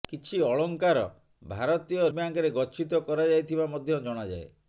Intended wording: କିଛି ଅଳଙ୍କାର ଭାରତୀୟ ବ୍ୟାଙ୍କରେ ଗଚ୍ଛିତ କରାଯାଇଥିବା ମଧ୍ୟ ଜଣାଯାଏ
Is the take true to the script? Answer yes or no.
yes